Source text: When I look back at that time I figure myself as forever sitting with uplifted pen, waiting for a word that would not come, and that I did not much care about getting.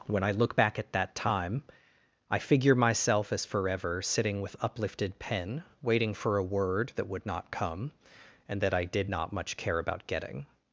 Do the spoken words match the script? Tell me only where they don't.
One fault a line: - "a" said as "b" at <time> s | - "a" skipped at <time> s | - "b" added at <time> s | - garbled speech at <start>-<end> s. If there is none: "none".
none